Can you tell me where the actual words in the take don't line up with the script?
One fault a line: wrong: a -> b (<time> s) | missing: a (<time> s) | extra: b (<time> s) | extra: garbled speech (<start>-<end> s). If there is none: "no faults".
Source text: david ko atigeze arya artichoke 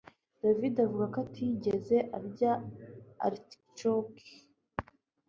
extra: avuga (0.8 s)